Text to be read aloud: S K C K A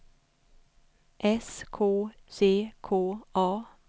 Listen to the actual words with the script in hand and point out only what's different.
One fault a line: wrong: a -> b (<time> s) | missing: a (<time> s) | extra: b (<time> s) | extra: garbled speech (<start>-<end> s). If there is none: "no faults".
no faults